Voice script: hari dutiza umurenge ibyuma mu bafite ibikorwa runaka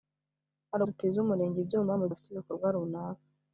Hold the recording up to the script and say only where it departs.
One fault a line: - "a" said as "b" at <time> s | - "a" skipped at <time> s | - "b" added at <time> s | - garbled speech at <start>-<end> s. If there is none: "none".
none